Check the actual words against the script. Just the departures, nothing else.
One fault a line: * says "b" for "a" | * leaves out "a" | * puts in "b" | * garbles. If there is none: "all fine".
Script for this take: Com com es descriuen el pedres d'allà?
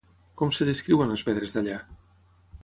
* leaves out "com"
* says "les" for "el"